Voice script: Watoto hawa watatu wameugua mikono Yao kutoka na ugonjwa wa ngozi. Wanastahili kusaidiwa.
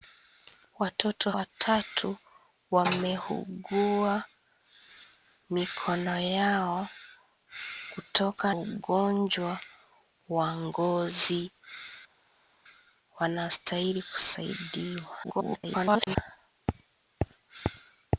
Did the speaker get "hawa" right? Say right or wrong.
wrong